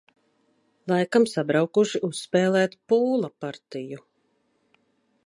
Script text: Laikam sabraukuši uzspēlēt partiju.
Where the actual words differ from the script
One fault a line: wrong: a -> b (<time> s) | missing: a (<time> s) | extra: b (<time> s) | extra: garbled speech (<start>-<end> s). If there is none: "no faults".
extra: pūla (2.9 s)